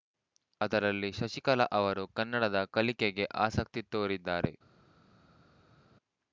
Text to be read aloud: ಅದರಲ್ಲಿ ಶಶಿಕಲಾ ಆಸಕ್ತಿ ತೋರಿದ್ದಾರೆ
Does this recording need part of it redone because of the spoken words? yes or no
yes